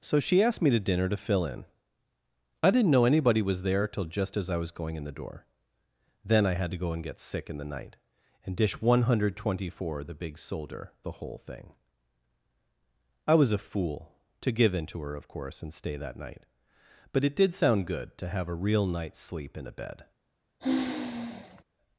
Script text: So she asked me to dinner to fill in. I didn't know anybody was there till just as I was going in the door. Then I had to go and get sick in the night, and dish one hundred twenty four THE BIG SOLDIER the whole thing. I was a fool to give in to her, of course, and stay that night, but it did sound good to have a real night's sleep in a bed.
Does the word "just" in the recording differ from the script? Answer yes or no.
no